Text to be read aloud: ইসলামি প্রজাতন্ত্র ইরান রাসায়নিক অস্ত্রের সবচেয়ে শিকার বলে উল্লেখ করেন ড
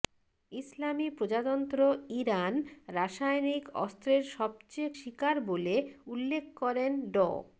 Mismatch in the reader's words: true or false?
false